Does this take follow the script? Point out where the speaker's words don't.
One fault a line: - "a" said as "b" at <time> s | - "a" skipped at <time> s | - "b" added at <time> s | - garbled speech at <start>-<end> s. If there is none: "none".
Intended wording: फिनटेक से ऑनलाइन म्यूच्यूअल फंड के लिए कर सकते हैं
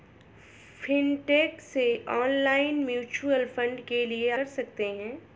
none